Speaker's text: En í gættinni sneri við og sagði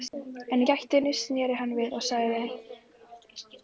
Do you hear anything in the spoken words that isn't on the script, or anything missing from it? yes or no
yes